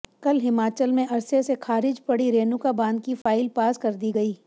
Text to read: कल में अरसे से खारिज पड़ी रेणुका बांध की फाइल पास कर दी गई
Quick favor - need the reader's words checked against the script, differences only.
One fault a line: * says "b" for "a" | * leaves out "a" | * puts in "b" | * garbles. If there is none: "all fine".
* puts in "हिमाचल"